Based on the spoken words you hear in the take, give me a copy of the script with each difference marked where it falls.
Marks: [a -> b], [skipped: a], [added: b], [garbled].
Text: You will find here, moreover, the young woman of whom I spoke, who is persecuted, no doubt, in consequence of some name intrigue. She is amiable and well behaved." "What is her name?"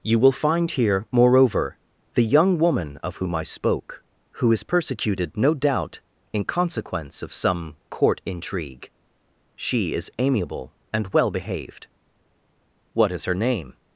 You will find here, moreover, the young woman of whom I spoke, who is persecuted, no doubt, in consequence of some [name -> court] intrigue. She is amiable and well behaved." "What is her name?"